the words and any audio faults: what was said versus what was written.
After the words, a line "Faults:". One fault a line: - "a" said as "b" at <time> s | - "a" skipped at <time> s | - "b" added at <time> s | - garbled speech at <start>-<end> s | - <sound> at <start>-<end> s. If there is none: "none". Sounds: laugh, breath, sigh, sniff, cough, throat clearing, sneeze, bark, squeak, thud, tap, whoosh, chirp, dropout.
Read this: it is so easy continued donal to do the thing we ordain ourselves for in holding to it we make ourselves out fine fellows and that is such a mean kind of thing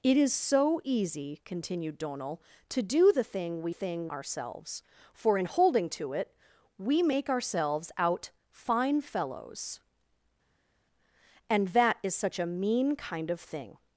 it is so easy continued donal to do the thing we thing ourselves for in holding to it we make ourselves out fine fellows and that is such a mean kind of thing
Faults:
- "ordain" said as "thing" at 3.7 s